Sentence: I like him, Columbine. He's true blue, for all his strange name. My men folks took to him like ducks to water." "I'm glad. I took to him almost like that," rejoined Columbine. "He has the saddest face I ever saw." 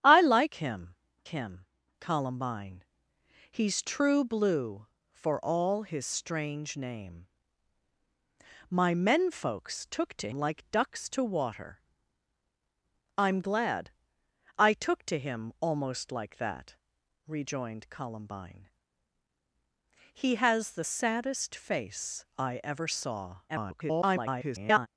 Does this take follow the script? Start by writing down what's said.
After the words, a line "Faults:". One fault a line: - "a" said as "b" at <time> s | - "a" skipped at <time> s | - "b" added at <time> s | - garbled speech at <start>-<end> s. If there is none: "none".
I like him him, Columbine. He's true blue, for all his strange name. My men folks took to like ducks to water." "I'm glad. I took to him almost like that," rejoined Columbine. "He has the saddest face I ever saw." [garbled]
Faults:
- "him" added at 1.3 s
- "him" skipped at 10.3 s
- garbled speech at 23.5-24.9 s